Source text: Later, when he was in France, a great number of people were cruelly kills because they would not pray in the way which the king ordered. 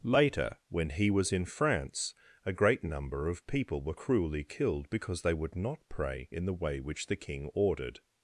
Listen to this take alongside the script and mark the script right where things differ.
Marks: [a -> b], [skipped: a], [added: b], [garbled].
Later, when he was in France, a great number of people were cruelly [kills -> killed] because they would not pray in the way which the king ordered.